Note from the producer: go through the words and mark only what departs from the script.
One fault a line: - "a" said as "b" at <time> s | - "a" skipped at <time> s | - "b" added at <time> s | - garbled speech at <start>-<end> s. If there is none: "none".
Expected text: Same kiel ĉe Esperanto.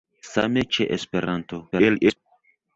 - "kiel" skipped at 0.6 s
- garbled speech at 1.7-2.2 s